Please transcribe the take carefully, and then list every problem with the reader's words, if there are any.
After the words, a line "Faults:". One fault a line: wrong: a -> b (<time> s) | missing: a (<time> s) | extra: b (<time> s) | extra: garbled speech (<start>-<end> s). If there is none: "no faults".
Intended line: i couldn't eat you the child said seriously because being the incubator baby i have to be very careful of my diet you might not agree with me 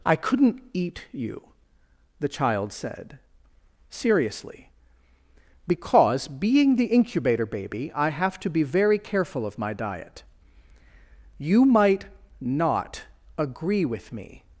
i couldn't eat you the child said seriously because being the incubator baby i have to be very careful of my diet you might not agree with me
Faults:
no faults